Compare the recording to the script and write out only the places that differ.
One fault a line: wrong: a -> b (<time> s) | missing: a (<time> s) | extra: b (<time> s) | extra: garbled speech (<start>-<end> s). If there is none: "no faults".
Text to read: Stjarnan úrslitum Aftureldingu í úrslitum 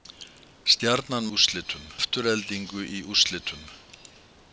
no faults